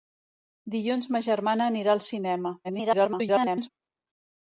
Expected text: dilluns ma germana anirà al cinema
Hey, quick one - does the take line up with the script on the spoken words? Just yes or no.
no